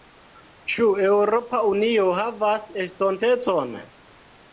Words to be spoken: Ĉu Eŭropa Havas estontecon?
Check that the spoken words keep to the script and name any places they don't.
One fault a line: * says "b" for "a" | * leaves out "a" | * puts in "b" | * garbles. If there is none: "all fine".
* puts in "Unio"